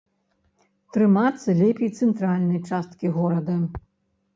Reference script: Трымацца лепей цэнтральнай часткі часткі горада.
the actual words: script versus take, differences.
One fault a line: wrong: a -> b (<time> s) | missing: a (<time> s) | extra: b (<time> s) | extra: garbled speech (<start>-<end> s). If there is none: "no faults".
missing: часткі (3.2 s)